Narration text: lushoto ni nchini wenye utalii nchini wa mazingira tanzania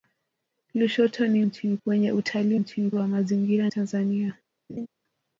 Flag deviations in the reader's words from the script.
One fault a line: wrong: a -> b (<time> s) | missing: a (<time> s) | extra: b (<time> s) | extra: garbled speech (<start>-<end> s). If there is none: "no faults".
no faults